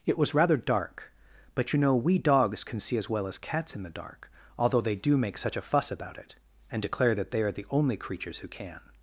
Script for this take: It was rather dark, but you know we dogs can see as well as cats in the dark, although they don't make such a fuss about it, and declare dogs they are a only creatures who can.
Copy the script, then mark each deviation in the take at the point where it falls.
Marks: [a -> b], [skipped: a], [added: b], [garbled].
It was rather dark, but you know we dogs can see as well as cats in the dark, although they [don't -> do] make such a fuss about it, and declare [dogs -> that] they are [a -> the] only creatures who can.